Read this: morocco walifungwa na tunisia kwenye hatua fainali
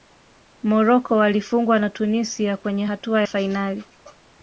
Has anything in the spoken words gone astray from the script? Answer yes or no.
no